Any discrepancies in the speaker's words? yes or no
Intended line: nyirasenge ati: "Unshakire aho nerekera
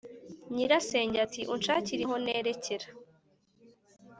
no